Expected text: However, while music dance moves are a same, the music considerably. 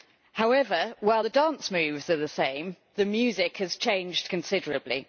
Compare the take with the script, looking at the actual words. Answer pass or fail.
fail